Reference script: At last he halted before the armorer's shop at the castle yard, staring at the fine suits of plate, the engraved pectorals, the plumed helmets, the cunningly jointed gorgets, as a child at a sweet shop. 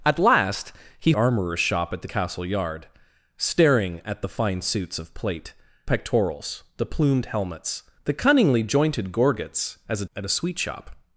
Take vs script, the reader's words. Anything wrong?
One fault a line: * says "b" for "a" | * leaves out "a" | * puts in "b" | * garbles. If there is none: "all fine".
* leaves out "halted before the"
* leaves out "the engraved"
* leaves out "child"